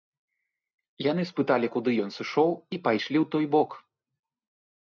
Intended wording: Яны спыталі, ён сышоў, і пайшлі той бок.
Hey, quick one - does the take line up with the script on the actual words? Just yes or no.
no